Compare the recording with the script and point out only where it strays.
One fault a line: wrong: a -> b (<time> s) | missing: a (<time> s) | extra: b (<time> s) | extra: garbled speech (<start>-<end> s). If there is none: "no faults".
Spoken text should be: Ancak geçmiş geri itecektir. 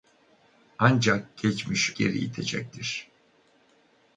no faults